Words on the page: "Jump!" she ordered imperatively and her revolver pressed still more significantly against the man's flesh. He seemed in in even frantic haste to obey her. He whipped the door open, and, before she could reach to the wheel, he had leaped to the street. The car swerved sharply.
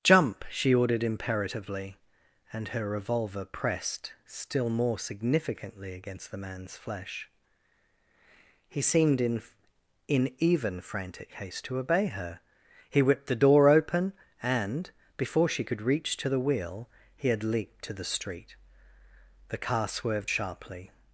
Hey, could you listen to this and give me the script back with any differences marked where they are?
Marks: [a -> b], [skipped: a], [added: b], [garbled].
"Jump!" she ordered imperatively and her revolver pressed still more significantly against the man's flesh. He seemed in in even frantic haste to obey her. He whipped the door open, and, before she could reach to the wheel, he had leaped to the street. The car swerved sharply.